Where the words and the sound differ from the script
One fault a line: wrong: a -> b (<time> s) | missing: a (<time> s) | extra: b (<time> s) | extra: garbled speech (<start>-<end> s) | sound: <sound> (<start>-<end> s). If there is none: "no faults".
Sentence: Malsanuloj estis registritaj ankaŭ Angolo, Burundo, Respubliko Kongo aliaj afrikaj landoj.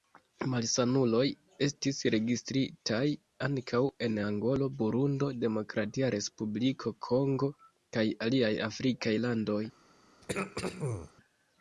extra: en (4.1 s)
extra: Demokratia (5.5 s)
extra: kaj (8.0 s)
sound: throat clearing (10.2-11.1 s)